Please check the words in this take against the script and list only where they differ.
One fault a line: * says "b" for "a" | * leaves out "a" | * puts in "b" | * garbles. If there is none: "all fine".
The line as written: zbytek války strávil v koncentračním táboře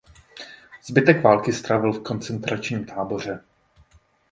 all fine